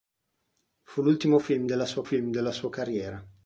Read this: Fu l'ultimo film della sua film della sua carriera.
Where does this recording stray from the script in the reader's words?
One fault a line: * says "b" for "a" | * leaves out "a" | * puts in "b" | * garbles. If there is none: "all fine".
all fine